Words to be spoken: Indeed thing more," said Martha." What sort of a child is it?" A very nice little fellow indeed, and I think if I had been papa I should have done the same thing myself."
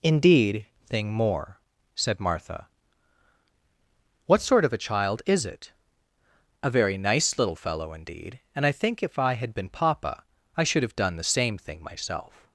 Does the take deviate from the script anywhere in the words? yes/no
no